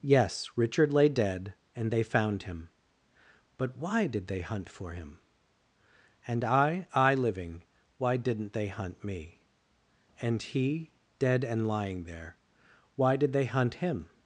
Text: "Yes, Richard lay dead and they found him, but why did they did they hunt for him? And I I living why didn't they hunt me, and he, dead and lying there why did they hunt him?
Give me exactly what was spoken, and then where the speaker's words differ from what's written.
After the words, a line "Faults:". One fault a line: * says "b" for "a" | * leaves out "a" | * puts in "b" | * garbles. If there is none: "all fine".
"Yes, Richard lay dead and they found him, but why did they hunt for him? And I I living why didn't they hunt me, and he, dead and lying there why did they hunt him?
Faults:
* leaves out "did they"